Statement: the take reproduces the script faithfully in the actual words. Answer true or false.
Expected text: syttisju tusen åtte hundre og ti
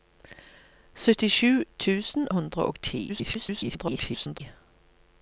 false